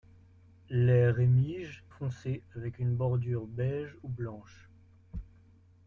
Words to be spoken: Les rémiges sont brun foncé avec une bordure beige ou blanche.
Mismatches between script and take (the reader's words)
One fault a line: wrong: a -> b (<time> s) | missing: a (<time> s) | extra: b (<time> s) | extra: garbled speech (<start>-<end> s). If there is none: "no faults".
missing: sont brun (1.9 s)